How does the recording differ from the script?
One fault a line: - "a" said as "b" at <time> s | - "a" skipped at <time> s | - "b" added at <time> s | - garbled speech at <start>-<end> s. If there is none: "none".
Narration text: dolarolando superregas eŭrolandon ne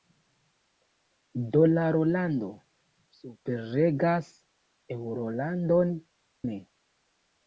none